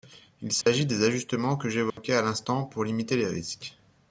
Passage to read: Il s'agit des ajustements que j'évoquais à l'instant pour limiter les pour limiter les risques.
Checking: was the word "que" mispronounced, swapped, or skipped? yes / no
no